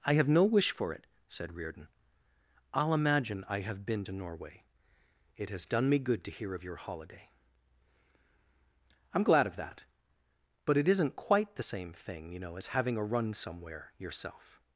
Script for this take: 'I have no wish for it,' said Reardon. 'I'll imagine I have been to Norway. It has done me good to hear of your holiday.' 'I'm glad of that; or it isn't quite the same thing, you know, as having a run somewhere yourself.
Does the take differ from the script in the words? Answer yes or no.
yes